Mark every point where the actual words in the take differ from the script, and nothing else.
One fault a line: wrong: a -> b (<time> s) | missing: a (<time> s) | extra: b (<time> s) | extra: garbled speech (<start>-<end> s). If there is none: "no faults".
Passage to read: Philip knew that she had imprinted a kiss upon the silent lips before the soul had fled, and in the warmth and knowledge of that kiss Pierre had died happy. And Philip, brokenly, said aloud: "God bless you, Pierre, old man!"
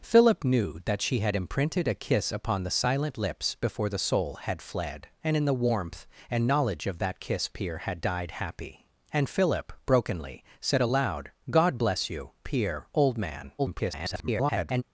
extra: garbled speech (13.6-14.8 s)